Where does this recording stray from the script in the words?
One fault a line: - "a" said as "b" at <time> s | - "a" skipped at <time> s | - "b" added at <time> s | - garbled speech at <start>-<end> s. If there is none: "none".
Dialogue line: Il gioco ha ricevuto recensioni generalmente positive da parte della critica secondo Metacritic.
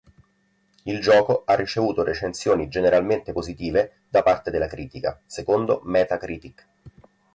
none